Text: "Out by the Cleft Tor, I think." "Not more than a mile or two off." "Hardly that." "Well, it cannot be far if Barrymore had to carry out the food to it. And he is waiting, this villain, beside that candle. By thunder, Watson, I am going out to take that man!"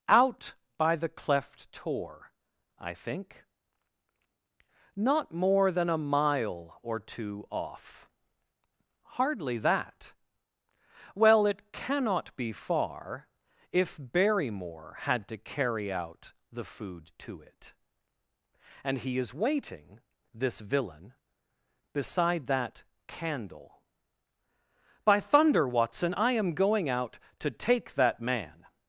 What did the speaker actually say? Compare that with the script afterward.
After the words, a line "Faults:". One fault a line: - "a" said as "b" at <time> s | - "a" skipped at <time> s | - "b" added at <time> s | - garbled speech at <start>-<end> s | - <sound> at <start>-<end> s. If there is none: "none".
"Out by the Cleft Tor, I think." "Not more than a mile or two off." "Hardly that." "Well, it cannot be far if Barrymore had to carry out the food to it. And he is waiting, this villain, beside that candle. By thunder, Watson, I am going out to take that man!"
Faults:
none